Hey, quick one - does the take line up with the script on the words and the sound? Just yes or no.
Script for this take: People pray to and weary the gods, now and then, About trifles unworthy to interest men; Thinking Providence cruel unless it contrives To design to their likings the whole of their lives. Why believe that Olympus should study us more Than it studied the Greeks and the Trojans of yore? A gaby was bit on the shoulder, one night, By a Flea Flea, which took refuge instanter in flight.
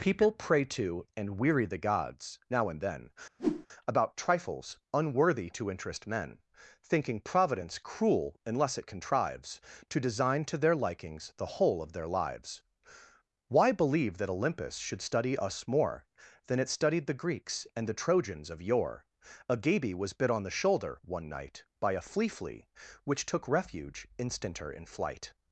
no